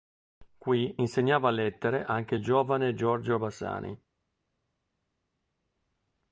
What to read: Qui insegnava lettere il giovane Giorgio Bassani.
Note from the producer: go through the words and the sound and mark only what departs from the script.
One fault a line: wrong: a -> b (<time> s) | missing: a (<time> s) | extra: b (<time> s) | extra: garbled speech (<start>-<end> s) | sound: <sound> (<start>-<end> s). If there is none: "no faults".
extra: anche (2.0 s)